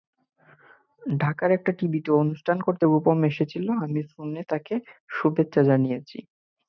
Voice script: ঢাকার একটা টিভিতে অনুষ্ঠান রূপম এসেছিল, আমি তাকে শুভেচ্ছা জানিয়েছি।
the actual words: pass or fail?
fail